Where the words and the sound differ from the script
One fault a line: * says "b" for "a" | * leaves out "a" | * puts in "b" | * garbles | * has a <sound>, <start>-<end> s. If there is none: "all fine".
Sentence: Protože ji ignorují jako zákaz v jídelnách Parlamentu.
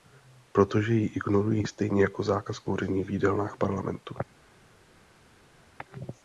* puts in "stejně"
* puts in "kouření"